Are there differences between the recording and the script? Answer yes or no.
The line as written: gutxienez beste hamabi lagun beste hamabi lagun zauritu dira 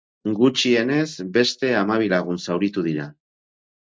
yes